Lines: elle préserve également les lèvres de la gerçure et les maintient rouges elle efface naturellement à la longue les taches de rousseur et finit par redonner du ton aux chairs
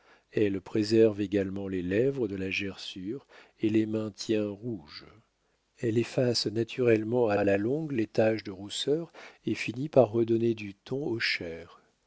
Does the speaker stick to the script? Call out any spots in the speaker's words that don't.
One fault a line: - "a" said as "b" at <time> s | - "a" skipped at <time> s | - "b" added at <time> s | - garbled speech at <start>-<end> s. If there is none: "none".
- "à" added at 7.3 s